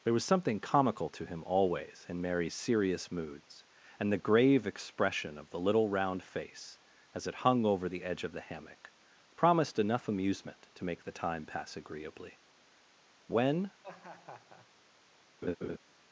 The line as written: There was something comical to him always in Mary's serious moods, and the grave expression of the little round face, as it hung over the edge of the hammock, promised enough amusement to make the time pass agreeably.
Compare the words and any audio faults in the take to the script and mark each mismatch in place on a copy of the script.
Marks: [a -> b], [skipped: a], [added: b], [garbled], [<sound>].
There was something comical to him always in Mary's serious moods, and the grave expression of the little round face, as it hung over the edge of the hammock, promised enough amusement to make the time pass agreeably. [added: When] [laugh] [laugh]